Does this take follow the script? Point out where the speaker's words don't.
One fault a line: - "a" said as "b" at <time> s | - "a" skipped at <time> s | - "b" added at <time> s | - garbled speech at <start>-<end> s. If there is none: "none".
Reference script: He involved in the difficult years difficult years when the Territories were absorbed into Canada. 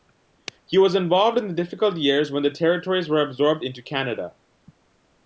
- "was" added at 0.8 s
- "difficult years" skipped at 2.3 s